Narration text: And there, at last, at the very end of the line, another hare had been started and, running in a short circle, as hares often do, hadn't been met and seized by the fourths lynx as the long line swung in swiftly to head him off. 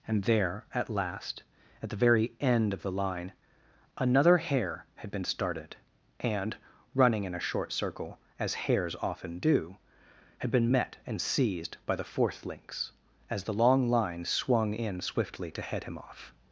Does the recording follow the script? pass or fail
fail